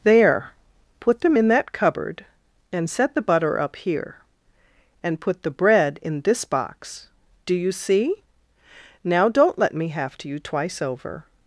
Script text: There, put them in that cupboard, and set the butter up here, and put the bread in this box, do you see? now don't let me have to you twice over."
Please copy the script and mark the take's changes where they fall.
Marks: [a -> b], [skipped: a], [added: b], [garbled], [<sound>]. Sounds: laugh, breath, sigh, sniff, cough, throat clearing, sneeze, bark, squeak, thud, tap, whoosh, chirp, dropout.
There, put them in that cupboard, and set the butter up here, and put the bread in this box, do you see? now don't let me have to you twice over."